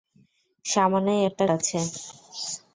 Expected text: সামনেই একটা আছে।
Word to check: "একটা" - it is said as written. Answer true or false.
true